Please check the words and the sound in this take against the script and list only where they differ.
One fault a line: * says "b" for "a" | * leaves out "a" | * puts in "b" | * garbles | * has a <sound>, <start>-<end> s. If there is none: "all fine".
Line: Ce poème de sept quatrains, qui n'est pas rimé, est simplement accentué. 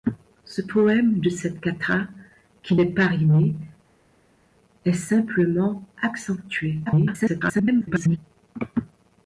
* garbles